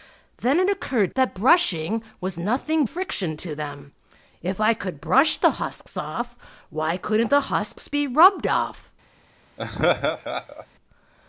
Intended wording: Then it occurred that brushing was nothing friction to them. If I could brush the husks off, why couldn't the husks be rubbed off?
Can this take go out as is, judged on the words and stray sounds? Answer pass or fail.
fail